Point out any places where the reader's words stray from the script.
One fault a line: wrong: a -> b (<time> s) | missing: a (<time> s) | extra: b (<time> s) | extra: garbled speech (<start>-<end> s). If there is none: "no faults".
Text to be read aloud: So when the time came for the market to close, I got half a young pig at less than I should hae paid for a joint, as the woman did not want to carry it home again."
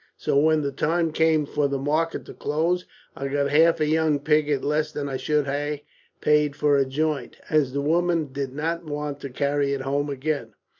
no faults